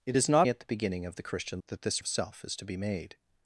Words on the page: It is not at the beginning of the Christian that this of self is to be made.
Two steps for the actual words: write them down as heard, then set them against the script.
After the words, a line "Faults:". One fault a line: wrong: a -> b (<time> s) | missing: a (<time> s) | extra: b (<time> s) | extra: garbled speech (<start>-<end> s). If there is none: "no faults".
It is not at the beginning of the Christian that this of self is to be made.
Faults:
no faults